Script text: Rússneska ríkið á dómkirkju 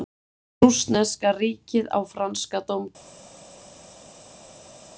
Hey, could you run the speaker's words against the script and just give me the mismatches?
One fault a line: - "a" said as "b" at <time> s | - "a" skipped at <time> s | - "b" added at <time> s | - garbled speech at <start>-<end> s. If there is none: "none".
- "franska" added at 2.2 s